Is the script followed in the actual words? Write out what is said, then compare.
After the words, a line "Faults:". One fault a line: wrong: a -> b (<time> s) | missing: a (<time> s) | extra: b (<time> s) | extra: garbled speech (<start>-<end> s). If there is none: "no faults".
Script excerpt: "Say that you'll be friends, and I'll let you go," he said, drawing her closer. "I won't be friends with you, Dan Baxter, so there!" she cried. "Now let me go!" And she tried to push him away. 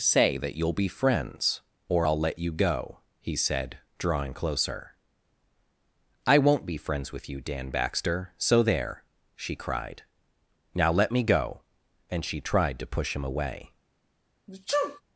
"Say that you'll be friends, or I'll let you go," he said, drawing closer. "I won't be friends with you, Dan Baxter, so there!" she cried. "Now let me go!" And she tried to push him away.
Faults:
wrong: and -> or (1.9 s)
missing: her (4.3 s)